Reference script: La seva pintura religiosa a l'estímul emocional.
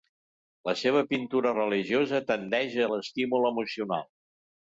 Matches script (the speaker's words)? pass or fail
fail